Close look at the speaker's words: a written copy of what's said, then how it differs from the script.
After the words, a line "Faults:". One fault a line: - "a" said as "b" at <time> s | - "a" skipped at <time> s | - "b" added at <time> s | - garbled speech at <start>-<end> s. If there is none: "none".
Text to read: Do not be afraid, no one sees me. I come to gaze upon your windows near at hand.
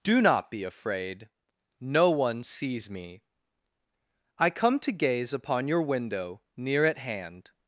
Do not be afraid, no one sees me. I come to gaze upon your window near at hand.
Faults:
- "windows" said as "window" at 5.8 s